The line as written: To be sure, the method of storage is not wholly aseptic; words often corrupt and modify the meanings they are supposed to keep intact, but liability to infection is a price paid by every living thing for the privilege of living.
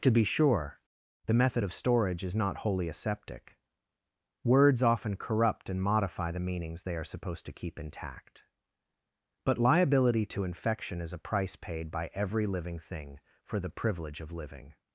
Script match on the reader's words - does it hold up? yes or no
yes